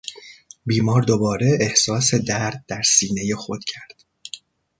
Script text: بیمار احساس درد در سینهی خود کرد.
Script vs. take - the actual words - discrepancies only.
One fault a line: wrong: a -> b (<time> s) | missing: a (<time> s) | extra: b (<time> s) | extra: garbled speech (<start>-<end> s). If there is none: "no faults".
extra: دوباره (1.0 s)